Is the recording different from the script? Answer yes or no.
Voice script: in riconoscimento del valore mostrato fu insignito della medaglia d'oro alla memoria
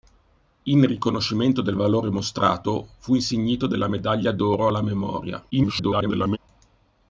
yes